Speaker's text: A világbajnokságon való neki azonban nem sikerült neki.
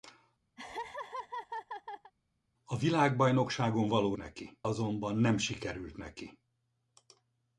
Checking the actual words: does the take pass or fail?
pass